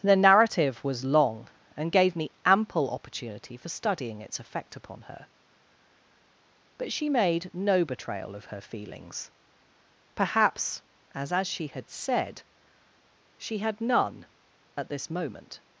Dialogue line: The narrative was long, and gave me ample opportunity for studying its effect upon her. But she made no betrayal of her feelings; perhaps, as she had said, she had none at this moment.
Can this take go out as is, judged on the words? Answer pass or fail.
fail